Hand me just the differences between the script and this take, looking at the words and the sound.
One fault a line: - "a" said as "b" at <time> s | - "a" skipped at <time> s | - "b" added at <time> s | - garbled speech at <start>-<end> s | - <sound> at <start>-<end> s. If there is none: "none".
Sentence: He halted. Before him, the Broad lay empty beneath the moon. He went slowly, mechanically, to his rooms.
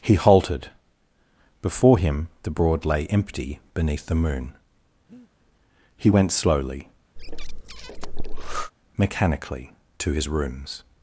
- breath at 5.1-5.3 s
- breath at 7.2-8.7 s